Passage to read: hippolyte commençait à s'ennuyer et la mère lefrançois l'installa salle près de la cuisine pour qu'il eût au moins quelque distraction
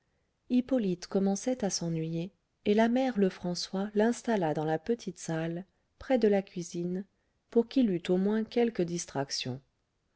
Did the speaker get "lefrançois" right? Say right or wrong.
right